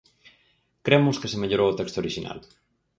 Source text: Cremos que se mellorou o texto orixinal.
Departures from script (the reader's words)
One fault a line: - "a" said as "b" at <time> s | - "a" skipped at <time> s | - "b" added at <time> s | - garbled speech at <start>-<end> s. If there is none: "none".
none